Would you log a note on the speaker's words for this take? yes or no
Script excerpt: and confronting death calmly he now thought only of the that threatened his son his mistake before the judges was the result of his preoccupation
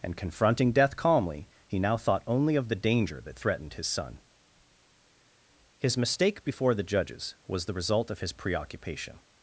yes